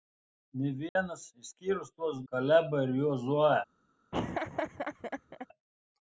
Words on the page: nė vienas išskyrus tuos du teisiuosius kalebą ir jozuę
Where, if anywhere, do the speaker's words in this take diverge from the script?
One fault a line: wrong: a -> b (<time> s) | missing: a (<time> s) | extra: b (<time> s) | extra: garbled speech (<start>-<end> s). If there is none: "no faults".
missing: du teisiuosius (2.2 s)